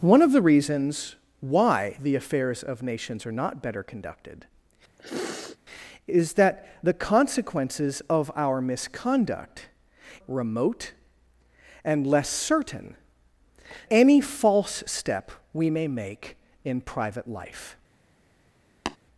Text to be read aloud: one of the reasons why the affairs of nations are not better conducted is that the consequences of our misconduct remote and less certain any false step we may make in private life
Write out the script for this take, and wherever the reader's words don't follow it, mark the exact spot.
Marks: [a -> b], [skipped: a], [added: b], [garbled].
one of the reasons why the affairs of nations are not better conducted is that the consequences of our misconduct remote and less certain any false step we may make in private life